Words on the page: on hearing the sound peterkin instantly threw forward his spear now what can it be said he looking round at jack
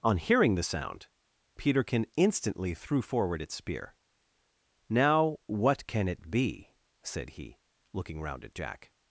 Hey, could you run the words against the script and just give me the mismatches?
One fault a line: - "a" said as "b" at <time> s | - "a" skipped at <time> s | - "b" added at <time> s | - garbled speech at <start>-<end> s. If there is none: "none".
- "his" said as "its" at 3.4 s